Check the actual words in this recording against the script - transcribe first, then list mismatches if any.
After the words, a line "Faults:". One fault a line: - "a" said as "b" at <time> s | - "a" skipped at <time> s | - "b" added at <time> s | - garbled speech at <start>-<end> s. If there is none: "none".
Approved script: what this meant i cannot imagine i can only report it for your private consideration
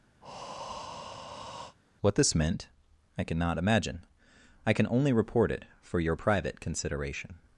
what this meant i cannot imagine i can only report it for your private consideration
Faults:
none